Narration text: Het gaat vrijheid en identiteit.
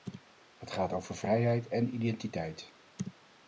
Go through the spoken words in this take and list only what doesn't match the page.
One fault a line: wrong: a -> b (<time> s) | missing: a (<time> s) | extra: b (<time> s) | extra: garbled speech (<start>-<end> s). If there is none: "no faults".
extra: over (0.9 s)